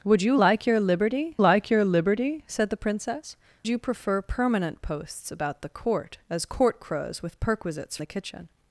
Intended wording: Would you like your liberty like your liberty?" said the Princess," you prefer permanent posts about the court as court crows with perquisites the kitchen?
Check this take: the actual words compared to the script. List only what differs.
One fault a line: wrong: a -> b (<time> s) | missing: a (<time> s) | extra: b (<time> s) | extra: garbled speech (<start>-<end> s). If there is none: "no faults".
no faults